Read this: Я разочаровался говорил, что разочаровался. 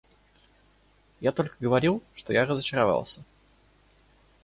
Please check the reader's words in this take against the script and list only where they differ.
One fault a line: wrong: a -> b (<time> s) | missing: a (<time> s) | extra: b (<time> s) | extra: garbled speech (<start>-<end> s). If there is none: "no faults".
wrong: разочаровался -> только (1.3 s)
extra: я (2.3 s)